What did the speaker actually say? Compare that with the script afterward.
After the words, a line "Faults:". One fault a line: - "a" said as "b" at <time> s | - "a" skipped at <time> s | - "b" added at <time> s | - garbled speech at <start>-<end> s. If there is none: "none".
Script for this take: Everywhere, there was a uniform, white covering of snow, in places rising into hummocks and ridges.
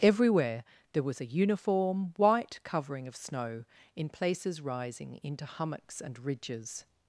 Everywhere, there was a uniform, white covering of snow, in places rising into hummocks and ridges.
Faults:
none